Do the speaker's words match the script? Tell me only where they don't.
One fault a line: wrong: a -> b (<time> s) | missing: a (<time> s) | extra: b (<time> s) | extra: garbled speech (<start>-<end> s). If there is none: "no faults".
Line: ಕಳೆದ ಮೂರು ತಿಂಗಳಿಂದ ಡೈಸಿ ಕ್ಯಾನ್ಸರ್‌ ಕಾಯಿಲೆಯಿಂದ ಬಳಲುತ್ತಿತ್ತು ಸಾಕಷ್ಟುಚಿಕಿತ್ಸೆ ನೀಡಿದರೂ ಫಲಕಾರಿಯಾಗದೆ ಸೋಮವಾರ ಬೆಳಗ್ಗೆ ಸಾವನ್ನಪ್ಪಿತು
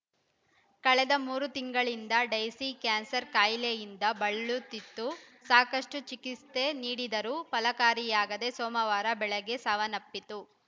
no faults